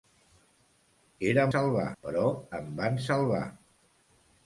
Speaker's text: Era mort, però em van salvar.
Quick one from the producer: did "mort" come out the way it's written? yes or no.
no